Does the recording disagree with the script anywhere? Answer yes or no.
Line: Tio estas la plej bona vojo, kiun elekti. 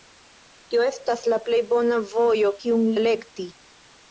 no